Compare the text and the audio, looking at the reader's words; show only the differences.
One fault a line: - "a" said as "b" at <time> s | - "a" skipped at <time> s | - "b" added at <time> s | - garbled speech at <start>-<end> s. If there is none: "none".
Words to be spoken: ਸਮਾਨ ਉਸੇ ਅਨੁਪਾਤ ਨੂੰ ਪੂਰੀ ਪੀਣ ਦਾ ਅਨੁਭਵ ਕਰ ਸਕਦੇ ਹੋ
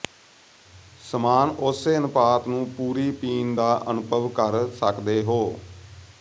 none